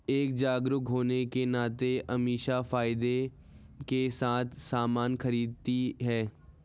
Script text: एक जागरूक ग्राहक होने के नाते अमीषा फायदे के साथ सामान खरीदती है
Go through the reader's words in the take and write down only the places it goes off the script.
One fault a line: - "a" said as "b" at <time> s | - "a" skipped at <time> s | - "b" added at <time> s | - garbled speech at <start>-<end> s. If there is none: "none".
- "ग्राहक" skipped at 0.8 s